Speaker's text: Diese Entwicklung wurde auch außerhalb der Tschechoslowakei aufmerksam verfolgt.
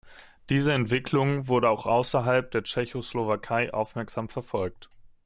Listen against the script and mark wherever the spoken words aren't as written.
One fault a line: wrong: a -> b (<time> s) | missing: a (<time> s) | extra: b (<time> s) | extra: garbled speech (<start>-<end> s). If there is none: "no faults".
no faults